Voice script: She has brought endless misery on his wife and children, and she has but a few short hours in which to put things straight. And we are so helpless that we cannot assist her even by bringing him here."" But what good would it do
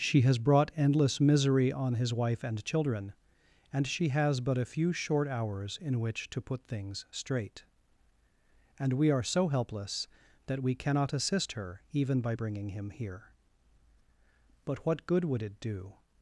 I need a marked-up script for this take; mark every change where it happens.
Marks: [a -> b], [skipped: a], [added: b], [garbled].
She has brought endless misery on his wife and children, and she has but a few short hours in which to put things straight. And we are so helpless that we cannot assist her even by bringing him here."" But what good would it do